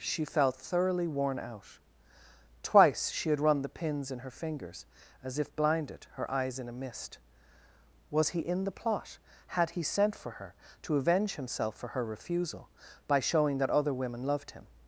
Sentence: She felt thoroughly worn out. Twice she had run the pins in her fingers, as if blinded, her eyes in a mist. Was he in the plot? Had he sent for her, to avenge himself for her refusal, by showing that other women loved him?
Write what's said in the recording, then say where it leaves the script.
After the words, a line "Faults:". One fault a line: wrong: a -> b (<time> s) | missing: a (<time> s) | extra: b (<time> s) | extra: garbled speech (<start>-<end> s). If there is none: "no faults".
She felt thoroughly worn out. Twice she had run the pins in her fingers, as if blinded, her eyes in a mist. Was he in the plot? Had he sent for her, to avenge himself for her refusal, by showing that other women loved him?
Faults:
no faults